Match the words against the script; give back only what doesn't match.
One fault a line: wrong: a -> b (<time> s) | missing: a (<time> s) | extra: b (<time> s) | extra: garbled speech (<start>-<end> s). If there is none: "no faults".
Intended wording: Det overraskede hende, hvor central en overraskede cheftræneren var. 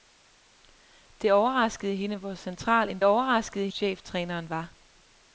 no faults